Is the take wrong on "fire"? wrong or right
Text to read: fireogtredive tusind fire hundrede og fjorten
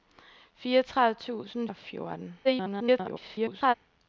wrong